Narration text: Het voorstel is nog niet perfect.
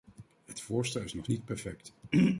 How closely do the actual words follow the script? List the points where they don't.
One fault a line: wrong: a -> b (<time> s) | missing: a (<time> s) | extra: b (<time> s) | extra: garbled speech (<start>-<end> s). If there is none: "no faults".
no faults